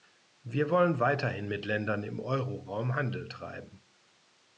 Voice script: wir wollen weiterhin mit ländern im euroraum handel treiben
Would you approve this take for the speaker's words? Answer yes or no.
yes